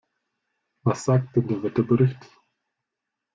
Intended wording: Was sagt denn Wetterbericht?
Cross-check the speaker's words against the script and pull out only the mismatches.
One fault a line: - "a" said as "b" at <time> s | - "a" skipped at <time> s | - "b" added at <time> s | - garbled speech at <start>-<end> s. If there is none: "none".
- "der" added at 1.5 s